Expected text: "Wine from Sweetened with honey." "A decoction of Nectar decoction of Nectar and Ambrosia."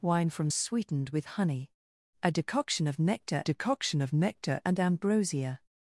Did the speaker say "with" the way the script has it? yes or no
yes